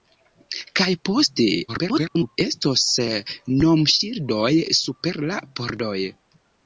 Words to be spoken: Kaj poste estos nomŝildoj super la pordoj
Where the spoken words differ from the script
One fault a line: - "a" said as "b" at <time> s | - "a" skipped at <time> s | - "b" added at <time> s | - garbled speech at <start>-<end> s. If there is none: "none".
- garbled speech at 1.7-2.4 s